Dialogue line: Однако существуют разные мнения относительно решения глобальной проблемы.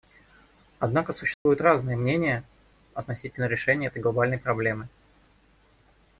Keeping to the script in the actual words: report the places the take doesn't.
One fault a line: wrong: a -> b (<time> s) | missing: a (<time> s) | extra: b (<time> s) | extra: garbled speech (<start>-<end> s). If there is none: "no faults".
extra: этой (3.9 s)